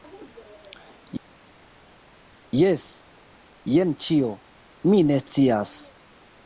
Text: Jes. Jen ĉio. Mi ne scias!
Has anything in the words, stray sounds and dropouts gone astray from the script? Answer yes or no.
no